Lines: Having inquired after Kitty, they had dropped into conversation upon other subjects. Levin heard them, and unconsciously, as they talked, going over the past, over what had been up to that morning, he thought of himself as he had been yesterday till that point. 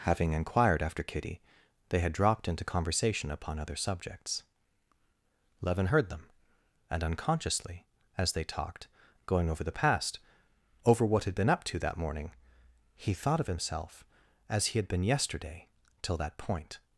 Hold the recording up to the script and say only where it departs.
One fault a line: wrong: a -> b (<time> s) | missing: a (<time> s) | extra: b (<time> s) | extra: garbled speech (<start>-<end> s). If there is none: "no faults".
no faults